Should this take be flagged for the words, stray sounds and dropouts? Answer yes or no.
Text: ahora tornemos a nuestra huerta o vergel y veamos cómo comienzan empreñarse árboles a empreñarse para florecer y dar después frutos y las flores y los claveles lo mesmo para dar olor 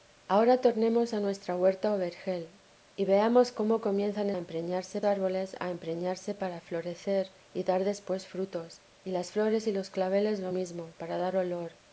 no